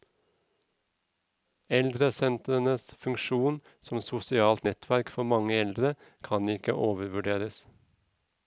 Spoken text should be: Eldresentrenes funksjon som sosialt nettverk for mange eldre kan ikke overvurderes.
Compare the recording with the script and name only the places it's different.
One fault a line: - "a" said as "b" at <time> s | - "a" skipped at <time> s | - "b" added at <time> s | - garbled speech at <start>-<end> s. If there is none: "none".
none